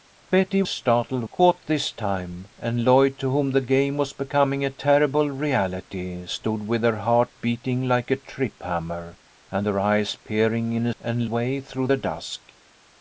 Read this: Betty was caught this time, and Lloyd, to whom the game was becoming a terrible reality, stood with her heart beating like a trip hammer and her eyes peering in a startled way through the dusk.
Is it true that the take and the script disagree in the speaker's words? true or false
true